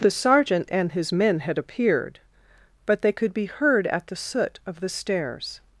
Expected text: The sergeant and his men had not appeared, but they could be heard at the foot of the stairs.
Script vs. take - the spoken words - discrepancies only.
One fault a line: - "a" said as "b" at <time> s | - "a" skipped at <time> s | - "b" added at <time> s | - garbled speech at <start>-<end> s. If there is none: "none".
- "not" skipped at 1.6 s
- "foot" said as "soot" at 4.2 s